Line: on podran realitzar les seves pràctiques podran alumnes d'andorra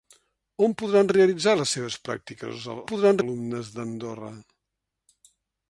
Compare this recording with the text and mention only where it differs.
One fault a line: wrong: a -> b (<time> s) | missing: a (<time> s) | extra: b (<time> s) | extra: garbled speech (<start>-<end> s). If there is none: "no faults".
no faults